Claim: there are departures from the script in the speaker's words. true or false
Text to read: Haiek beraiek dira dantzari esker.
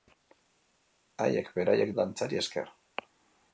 true